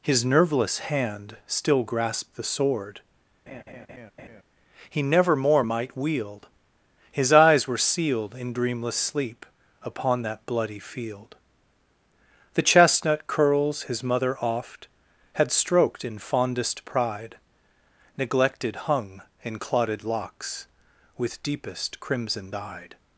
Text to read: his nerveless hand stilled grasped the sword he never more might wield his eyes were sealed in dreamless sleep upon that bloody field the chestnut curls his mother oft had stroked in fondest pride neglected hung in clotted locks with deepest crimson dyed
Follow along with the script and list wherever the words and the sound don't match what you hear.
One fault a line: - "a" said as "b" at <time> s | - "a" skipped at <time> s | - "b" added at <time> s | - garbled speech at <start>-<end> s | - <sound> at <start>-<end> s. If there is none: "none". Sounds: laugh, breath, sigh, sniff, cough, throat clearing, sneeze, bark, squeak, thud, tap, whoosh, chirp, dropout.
- "stilled" said as "still" at 1.4 s
- laugh at 3.5-4.4 s